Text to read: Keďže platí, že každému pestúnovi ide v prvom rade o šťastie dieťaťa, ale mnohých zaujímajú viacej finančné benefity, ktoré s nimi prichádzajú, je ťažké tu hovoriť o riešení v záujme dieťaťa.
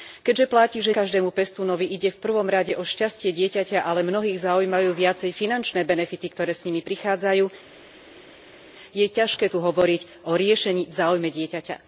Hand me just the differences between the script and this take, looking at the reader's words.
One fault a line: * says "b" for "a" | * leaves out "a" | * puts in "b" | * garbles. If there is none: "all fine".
all fine